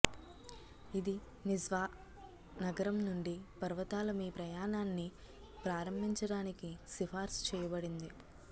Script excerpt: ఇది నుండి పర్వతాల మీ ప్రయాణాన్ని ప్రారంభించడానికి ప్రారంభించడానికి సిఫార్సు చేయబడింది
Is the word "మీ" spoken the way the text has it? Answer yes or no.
yes